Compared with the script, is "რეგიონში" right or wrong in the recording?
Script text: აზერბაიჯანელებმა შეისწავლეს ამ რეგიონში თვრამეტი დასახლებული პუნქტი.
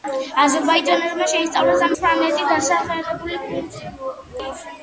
wrong